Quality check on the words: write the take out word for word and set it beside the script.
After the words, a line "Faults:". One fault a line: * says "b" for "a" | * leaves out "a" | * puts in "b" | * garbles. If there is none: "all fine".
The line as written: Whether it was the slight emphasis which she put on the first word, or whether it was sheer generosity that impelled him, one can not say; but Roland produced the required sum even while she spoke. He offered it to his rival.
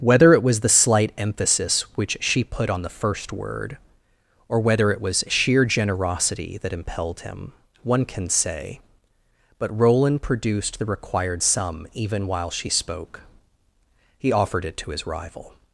Whether it was the slight emphasis which she put on the first word, or whether it was sheer generosity that impelled him, one can say; but Roland produced the required sum even while she spoke. He offered it to his rival.
Faults:
* leaves out "not"